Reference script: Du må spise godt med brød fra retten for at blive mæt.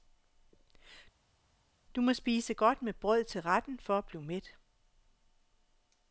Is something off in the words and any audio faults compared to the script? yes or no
yes